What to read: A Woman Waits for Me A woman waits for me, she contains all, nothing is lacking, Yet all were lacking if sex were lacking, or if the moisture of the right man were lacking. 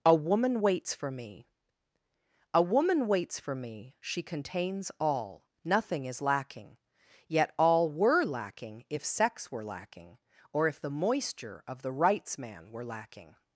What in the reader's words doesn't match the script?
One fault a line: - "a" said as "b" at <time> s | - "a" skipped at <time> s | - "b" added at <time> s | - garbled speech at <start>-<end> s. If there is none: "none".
- "right" said as "rights" at 11.9 s